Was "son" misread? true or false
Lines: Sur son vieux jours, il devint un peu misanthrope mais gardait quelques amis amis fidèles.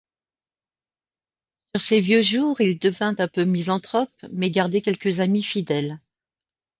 true